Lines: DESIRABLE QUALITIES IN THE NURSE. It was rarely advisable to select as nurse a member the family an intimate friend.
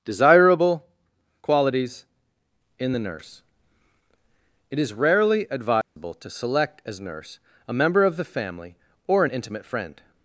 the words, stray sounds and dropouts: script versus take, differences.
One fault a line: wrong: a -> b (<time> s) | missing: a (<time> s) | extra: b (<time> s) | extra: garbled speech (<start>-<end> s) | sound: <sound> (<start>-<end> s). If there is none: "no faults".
wrong: was -> is (4.8 s)
sound: dropout (5.8-6.0 s)
extra: of (8.0 s)
extra: or (9.1 s)